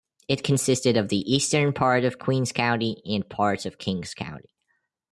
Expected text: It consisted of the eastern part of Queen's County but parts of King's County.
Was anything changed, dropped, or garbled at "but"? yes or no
yes